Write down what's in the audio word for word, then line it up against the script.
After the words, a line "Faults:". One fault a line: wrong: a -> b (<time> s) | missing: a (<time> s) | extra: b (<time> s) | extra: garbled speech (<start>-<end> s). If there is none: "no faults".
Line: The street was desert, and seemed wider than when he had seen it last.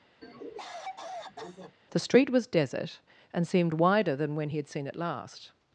The street was desert, and seemed wider than when he had seen it last.
Faults:
no faults